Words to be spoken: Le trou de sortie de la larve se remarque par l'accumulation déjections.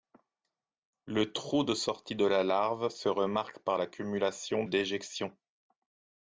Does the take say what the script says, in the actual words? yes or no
yes